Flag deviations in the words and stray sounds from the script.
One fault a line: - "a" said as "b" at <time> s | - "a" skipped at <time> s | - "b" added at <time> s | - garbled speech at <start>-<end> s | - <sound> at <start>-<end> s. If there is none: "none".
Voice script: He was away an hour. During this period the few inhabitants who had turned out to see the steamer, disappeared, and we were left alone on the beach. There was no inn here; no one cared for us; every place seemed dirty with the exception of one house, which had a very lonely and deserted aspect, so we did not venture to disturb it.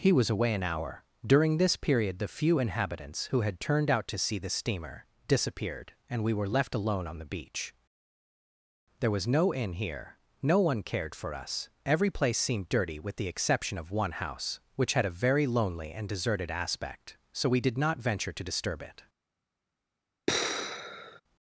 - sigh at 20.3-21.2 s